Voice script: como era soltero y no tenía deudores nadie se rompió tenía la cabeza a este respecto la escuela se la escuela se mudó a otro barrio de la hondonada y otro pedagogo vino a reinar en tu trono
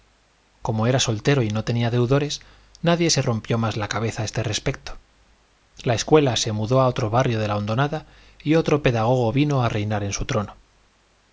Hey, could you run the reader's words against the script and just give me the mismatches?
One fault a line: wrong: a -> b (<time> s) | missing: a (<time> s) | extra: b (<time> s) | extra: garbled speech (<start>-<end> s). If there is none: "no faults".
wrong: tenía -> más (3.6 s)
missing: la escuela se (6.5 s)
wrong: tu -> su (10.1 s)